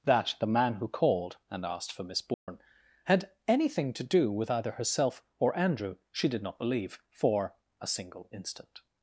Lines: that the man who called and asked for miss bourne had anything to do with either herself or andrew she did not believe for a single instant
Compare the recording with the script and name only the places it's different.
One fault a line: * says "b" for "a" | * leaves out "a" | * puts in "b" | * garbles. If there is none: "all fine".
all fine